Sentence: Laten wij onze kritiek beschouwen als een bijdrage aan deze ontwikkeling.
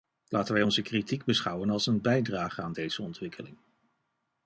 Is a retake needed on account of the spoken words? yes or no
no